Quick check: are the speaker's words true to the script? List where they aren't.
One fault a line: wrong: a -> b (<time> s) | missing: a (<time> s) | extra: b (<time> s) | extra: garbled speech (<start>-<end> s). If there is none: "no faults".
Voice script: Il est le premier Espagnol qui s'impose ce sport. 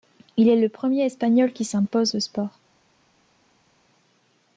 no faults